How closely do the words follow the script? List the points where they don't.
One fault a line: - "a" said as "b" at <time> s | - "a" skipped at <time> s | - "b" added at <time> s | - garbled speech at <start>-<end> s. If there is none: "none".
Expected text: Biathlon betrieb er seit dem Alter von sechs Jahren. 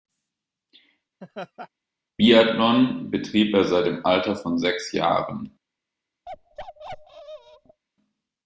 none